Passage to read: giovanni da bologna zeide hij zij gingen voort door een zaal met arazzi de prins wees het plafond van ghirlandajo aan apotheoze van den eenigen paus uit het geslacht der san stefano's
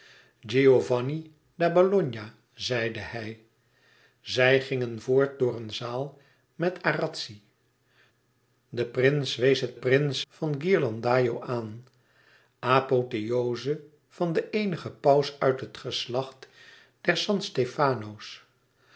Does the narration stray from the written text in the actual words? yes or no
yes